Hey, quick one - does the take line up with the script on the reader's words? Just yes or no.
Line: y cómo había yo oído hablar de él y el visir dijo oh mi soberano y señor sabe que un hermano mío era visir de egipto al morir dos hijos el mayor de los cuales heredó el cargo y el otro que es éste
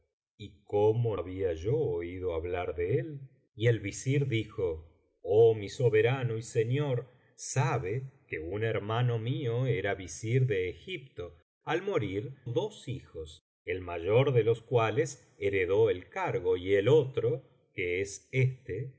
yes